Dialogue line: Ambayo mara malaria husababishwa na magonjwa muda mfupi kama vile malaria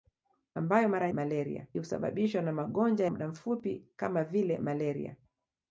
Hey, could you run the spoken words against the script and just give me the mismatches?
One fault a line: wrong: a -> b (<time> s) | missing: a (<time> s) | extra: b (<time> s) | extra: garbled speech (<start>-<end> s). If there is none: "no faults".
no faults